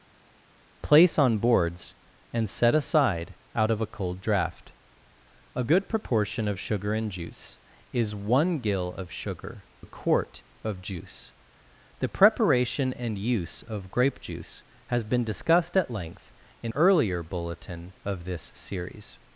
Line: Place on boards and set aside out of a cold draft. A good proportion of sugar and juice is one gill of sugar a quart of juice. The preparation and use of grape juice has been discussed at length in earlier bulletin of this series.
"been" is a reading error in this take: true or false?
false